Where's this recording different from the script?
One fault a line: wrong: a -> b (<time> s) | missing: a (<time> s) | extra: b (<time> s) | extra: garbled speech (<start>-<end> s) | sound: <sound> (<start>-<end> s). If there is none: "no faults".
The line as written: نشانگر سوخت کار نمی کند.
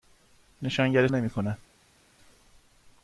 missing: سوخت کار (1.1 s)